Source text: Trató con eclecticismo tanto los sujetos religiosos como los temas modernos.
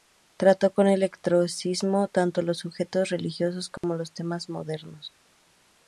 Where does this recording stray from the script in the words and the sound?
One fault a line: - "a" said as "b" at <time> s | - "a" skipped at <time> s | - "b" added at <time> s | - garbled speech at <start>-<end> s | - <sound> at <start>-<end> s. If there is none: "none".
- dropout at 3.8-3.8 s